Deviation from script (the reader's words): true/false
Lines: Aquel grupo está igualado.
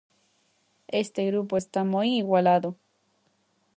true